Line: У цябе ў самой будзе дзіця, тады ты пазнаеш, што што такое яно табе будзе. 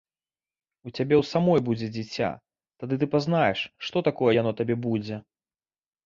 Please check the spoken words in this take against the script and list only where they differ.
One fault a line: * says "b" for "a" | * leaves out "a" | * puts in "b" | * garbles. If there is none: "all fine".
* leaves out "што"